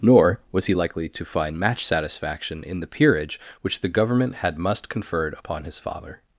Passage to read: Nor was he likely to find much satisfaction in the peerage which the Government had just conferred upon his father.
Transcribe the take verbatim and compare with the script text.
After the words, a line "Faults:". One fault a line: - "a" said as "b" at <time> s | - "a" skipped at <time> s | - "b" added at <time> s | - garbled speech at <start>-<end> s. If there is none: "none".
Nor was he likely to find match satisfaction in the peerage which the Government had must conferred upon his father.
Faults:
- "much" said as "match" at 1.6 s
- "just" said as "must" at 4.6 s